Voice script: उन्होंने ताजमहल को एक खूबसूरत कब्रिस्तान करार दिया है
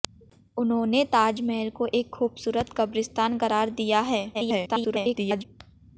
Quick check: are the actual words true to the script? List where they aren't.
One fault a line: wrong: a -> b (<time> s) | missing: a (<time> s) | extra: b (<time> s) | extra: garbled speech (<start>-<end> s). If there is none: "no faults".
extra: garbled speech (4.3-5.4 s)